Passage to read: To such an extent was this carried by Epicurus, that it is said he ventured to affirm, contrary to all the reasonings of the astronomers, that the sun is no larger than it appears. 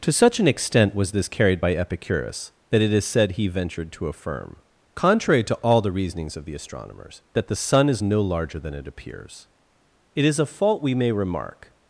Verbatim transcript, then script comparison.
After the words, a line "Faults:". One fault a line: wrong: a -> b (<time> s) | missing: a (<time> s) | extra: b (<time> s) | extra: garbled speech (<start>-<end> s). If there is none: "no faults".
To such an extent was this carried by Epicurus, that it is said he ventured to affirm, contrary to all the reasonings of the astronomers, that the sun is no larger than it appears. It is a fault we may remark
Faults:
extra: It is a fault we may remark (10.1 s)